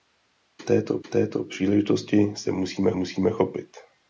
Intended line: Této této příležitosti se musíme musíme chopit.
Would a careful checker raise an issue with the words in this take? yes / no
no